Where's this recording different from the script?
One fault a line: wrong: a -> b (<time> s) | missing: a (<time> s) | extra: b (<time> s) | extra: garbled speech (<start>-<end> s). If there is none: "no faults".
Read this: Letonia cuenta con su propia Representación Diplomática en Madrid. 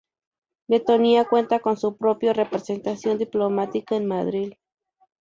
no faults